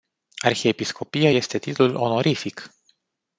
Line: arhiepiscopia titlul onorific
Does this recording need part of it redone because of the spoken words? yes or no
yes